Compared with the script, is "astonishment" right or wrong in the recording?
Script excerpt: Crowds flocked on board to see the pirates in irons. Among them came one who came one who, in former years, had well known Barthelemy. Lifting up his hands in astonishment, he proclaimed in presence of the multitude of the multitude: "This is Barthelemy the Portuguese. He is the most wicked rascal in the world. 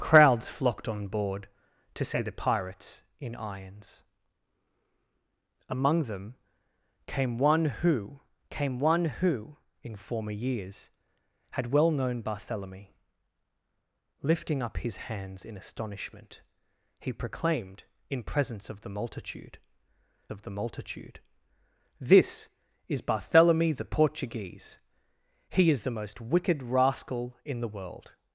right